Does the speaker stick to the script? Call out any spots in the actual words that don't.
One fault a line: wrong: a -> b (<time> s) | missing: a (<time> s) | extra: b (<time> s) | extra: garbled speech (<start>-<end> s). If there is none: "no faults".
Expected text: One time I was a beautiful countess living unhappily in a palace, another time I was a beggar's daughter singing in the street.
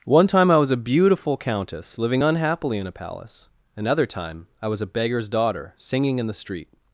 no faults